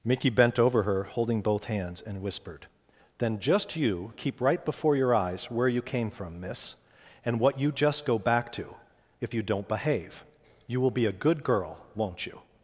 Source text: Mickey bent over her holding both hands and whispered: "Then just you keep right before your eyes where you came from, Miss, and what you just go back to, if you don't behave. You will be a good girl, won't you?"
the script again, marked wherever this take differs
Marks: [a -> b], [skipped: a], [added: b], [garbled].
Mickey bent over her holding both hands and whispered: "Then just you keep right before your eyes where you came from, Miss, and what you just go back to, if you don't behave. You will be a good girl, won't you?"